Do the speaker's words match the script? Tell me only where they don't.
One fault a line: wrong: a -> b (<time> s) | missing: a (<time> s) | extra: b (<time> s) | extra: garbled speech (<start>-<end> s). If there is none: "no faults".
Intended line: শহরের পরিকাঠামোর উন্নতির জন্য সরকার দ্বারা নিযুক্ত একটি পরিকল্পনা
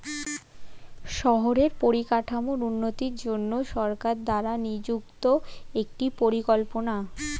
no faults